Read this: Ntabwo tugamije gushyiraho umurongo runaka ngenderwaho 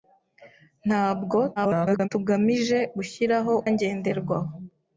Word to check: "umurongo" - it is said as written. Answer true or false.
false